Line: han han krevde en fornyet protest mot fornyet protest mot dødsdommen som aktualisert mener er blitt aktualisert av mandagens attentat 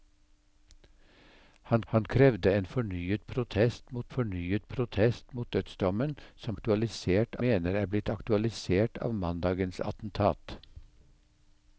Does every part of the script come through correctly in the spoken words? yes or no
yes